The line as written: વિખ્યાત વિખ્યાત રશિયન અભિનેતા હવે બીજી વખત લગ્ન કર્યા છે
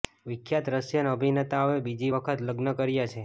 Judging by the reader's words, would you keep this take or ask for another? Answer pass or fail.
fail